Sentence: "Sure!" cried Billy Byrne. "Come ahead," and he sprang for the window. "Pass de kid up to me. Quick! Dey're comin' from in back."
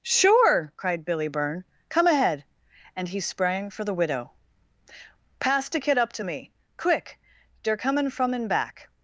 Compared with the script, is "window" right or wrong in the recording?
wrong